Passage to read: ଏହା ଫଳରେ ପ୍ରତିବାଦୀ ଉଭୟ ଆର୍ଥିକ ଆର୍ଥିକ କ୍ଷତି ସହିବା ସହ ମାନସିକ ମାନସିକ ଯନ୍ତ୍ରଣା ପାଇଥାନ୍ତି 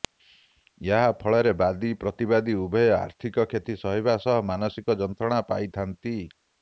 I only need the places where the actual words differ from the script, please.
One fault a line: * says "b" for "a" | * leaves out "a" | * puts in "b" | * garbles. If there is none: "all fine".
* puts in "ବାଦୀ"
* leaves out "ଆର୍ଥିକ"
* leaves out "ମାନସିକ"